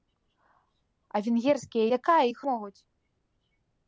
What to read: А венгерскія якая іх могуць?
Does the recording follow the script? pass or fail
pass